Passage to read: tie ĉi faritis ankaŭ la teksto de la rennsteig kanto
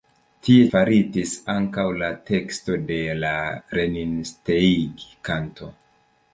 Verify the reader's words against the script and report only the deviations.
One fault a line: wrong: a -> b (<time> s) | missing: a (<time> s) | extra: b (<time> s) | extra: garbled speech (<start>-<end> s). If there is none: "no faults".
missing: ĉi (0.6 s)